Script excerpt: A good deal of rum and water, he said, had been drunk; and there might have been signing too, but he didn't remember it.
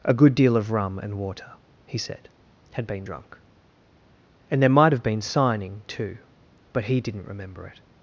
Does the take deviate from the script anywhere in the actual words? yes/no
no